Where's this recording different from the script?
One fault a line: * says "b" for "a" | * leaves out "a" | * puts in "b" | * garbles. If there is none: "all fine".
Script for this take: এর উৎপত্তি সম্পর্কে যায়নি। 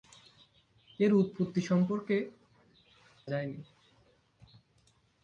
all fine